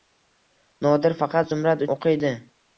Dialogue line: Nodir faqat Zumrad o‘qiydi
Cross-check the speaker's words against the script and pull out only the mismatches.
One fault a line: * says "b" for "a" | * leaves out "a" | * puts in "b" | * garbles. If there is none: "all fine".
all fine